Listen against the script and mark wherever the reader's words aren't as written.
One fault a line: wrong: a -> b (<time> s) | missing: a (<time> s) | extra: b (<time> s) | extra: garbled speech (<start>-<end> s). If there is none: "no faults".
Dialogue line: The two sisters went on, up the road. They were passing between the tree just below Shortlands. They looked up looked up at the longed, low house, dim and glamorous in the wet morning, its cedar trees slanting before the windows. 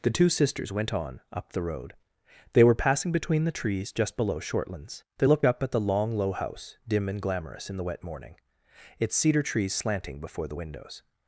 wrong: tree -> trees (3.5 s)
missing: looked up (5.6 s)
wrong: longed -> long (5.8 s)